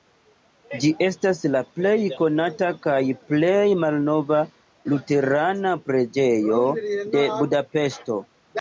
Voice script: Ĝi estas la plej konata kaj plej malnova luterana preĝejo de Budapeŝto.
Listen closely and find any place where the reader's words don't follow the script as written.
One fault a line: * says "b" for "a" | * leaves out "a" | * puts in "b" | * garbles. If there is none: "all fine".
all fine